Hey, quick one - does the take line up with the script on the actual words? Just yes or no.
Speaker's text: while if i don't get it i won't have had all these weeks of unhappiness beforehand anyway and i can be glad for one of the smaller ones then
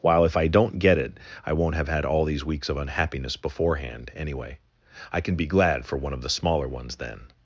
no